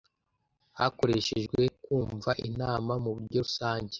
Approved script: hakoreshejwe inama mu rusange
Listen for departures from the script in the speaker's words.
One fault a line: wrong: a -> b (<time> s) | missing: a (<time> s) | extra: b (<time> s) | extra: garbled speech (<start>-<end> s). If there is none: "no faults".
extra: kumva (1.8 s)
extra: buryo (3.2 s)